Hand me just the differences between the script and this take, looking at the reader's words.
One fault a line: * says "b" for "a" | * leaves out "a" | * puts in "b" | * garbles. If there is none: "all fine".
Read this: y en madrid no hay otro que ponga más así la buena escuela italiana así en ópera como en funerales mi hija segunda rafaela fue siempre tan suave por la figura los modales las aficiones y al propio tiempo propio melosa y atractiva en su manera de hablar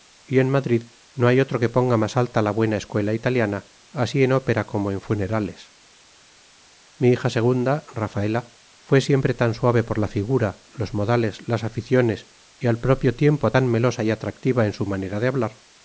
* says "alta" for "así"
* says "tan" for "propio"